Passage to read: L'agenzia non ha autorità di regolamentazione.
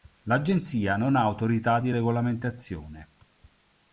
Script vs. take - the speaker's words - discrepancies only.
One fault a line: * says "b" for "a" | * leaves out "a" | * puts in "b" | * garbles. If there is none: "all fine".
all fine